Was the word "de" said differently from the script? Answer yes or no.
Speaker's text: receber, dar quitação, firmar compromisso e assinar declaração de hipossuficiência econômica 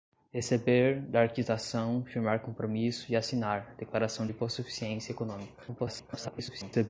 yes